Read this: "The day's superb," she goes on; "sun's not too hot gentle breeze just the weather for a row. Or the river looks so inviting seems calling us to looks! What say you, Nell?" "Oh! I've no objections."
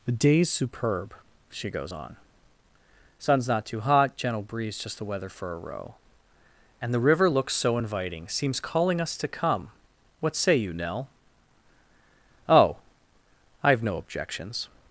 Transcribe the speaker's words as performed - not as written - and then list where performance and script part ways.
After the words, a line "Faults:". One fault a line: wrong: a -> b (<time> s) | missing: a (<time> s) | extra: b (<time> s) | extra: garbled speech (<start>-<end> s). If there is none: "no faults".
"The day's superb," she goes on; "sun's not too hot gentle breeze just the weather for a row. And the river looks so inviting seems calling us to come! What say you, Nell?" "Oh! I've no objections."
Faults:
wrong: Or -> And (6.8 s)
wrong: looks -> come (9.3 s)